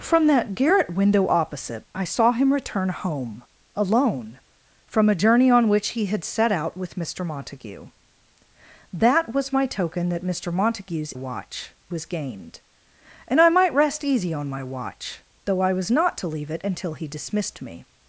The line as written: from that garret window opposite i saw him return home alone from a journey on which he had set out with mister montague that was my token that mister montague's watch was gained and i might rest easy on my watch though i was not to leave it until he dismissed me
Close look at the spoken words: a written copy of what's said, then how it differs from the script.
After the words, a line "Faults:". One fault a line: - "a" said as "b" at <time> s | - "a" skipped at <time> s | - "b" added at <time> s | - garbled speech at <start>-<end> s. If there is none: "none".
from that garret window opposite i saw him return home alone from a journey on which he had set out with mister montague that was my token that mister montague's watch was gained and i might rest easy on my watch though i was not to leave it until he dismissed me
Faults:
none